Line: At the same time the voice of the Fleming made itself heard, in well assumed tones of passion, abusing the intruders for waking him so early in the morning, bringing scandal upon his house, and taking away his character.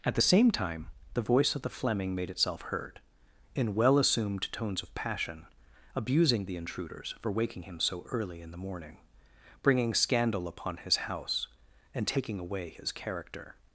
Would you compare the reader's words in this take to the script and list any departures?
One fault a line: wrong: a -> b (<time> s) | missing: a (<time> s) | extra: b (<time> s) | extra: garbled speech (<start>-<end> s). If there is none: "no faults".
no faults